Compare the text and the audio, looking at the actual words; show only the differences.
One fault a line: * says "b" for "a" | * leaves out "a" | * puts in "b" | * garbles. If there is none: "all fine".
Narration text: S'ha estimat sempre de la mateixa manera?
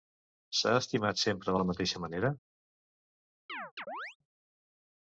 all fine